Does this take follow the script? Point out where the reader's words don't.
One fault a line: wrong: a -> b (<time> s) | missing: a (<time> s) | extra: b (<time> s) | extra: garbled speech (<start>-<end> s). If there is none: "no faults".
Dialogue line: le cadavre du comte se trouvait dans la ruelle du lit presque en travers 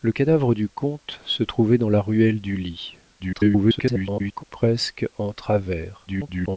extra: garbled speech (3.2-4.4 s)
extra: garbled speech (6.1-6.6 s)